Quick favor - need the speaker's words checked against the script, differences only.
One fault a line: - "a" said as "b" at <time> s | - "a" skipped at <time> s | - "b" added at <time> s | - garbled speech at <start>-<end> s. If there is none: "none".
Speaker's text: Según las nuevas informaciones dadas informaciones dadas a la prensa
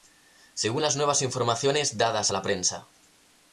- "informaciones dadas" skipped at 2.3 s